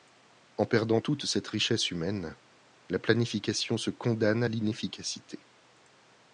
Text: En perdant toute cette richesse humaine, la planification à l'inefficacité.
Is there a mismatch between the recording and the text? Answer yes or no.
yes